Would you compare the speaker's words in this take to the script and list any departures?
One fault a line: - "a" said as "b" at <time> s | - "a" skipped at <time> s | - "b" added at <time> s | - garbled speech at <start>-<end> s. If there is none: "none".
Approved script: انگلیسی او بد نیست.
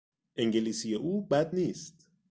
none